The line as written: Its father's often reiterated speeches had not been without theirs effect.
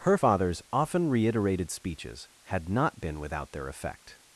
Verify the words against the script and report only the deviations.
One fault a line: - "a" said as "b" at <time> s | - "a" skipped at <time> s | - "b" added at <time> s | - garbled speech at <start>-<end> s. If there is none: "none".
- "Its" said as "Her" at 0.0 s
- "theirs" said as "their" at 3.5 s